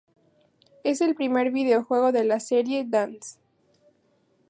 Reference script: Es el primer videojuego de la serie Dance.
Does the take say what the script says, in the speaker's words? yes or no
yes